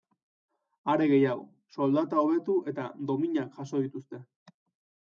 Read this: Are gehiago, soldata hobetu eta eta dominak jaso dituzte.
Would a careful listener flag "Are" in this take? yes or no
no